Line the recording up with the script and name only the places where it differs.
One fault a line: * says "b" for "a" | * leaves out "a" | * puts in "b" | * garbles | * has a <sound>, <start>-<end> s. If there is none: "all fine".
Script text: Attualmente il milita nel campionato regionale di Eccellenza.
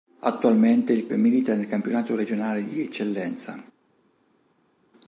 all fine